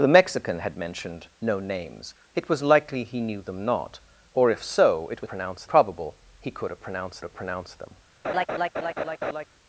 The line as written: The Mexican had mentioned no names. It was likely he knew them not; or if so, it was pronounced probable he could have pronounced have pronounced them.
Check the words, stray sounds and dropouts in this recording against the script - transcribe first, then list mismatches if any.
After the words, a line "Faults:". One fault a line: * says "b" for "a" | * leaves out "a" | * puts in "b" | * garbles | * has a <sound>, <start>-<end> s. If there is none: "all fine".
The Mexican had mentioned no names. It was likely he knew them not; or if so, it was pronounced probable he could have pronounced have pronounced them.
Faults:
* has a laugh, 8.2-9.5 s